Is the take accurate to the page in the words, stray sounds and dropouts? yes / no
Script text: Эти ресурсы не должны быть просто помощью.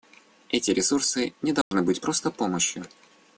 no